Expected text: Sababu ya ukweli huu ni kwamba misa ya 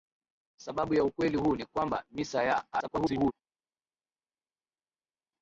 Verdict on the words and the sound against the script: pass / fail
fail